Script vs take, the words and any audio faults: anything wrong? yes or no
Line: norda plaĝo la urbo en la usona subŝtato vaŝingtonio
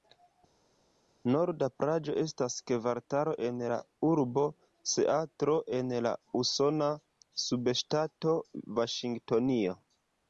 yes